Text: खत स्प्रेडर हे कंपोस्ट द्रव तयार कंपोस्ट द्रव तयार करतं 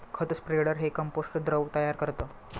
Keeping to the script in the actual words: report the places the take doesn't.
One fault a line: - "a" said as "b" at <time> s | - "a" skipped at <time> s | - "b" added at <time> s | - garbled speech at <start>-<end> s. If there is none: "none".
- "कंपोस्ट द्रव तयार" skipped at 2.0 s